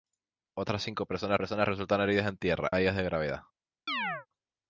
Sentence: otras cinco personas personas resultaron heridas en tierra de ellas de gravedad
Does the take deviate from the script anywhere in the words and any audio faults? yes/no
yes